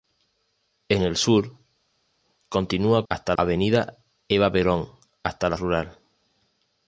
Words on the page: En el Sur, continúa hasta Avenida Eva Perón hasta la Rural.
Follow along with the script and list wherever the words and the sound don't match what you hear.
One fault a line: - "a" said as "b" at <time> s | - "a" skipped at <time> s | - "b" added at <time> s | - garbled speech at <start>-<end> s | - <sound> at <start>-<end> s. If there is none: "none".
none